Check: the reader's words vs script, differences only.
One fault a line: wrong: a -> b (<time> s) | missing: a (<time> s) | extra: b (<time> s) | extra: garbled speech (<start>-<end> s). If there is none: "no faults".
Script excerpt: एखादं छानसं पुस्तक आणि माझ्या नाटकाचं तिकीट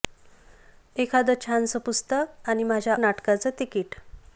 no faults